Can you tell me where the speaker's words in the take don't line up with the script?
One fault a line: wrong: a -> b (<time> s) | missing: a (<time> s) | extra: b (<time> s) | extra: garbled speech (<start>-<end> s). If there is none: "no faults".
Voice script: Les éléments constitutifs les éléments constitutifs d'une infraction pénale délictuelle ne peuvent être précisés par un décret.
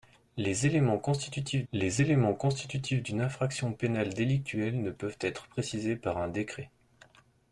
no faults